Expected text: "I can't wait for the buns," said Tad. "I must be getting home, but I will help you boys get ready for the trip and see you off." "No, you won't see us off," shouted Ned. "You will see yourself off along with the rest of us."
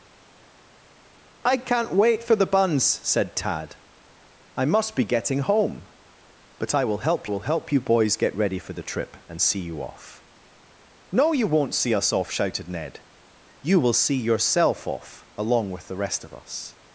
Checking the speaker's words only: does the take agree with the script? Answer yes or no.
no